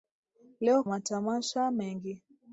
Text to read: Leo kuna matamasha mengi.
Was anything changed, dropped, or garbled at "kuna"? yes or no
yes